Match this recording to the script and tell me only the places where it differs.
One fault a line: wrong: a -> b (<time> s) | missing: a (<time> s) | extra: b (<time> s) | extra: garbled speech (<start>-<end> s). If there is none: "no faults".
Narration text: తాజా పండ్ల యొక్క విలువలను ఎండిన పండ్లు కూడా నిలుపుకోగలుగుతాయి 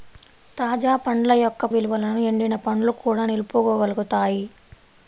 no faults